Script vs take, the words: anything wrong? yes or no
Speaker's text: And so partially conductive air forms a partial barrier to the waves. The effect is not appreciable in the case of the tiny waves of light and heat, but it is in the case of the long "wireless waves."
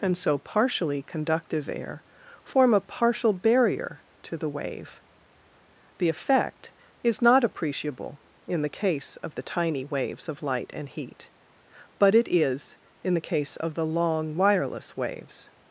yes